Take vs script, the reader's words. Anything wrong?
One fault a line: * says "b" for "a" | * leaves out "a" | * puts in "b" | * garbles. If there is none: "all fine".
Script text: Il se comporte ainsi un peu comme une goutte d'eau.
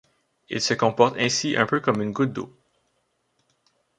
all fine